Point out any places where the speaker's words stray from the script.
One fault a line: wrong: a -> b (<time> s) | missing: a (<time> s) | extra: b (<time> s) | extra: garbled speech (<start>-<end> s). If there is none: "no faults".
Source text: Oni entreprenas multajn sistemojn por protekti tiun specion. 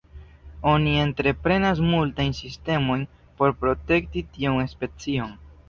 no faults